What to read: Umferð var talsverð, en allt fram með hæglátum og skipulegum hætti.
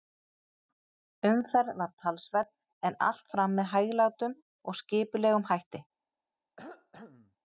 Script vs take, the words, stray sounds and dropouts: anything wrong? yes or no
yes